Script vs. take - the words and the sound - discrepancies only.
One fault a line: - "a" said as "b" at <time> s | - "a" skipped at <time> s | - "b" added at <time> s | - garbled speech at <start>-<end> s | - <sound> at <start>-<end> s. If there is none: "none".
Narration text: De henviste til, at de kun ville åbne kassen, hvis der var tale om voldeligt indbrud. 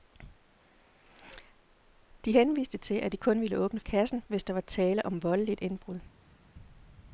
none